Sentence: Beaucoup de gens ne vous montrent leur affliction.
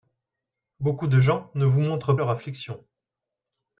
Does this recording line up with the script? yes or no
yes